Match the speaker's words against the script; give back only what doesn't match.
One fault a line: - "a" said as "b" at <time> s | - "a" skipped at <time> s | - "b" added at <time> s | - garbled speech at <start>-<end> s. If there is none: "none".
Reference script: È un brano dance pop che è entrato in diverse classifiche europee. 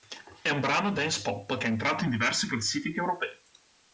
none